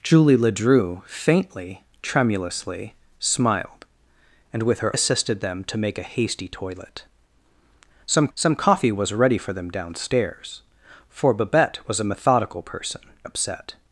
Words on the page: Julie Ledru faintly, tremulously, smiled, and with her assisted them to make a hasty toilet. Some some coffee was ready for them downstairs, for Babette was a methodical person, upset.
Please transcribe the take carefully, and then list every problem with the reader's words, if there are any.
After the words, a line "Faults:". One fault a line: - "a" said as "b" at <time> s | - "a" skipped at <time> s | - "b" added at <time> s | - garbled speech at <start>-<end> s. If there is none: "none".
Julie Ledru faintly, tremulously, smiled, and with her assisted them to make a hasty toilet. Some some coffee was ready for them downstairs, for Babette was a methodical person, upset.
Faults:
none